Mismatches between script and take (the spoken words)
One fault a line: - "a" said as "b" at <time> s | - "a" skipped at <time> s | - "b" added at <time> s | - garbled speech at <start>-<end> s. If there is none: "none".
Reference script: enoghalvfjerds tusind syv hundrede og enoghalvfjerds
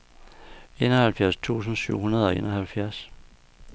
none